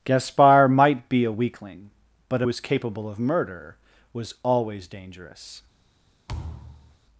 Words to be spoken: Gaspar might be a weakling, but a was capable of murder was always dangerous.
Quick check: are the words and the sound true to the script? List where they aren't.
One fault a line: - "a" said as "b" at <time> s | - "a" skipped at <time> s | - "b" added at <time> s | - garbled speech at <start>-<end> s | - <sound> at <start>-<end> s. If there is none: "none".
- thud at 6.3-7.0 s